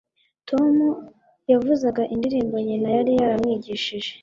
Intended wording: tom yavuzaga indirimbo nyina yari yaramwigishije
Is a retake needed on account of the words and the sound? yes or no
no